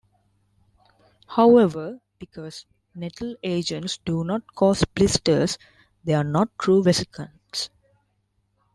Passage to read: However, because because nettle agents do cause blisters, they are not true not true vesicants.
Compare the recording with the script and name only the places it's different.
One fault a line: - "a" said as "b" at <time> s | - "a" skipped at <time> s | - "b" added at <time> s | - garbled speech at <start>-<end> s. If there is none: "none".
- "because" skipped at 2.6 s
- "not" added at 4.2 s
- "not true" skipped at 6.8 s